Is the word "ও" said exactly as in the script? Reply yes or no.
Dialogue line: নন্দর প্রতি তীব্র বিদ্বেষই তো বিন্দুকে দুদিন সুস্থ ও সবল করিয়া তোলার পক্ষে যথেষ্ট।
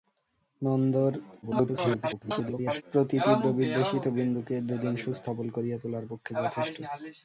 no